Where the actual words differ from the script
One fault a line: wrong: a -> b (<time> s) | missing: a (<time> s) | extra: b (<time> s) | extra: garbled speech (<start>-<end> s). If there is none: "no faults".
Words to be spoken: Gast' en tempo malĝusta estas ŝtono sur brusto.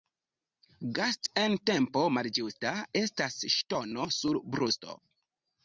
no faults